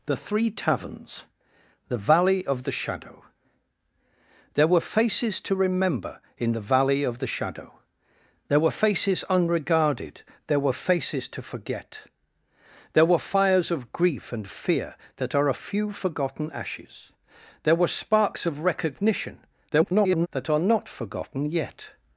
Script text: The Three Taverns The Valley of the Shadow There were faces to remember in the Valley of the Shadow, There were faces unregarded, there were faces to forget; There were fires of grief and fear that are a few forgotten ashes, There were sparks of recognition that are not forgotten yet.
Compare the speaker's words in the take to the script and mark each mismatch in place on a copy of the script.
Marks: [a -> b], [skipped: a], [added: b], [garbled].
The Three Taverns The Valley of the Shadow There were faces to remember in the Valley of the Shadow, There were faces unregarded, there were faces to forget; There were fires of grief and fear that are a few forgotten ashes, There were sparks of recognition [garbled] that are not forgotten yet.